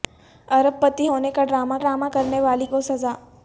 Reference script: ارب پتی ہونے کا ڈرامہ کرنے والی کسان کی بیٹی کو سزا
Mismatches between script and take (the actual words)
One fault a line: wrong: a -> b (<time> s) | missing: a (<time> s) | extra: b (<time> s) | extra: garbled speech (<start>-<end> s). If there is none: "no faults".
extra: ڈرامہ (1.8 s)
missing: کسان کی بیٹی (2.6 s)